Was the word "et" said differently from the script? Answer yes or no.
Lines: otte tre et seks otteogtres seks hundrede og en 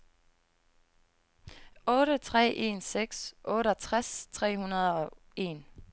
yes